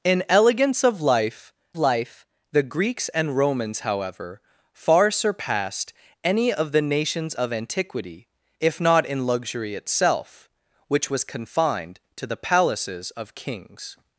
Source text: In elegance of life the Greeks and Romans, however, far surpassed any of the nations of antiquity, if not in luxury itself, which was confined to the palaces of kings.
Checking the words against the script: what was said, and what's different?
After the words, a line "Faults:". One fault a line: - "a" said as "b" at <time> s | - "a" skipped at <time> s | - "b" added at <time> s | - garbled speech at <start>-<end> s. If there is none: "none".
In elegance of life life the Greeks and Romans, however, far surpassed any of the nations of antiquity, if not in luxury itself, which was confined to the palaces of kings.
Faults:
- "life" added at 1.8 s